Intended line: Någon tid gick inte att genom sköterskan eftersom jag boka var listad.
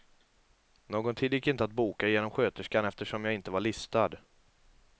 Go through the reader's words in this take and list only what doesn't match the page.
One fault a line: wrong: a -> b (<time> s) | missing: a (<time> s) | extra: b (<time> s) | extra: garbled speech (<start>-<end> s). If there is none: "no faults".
extra: boka (1.7 s)
wrong: boka -> inte (3.3 s)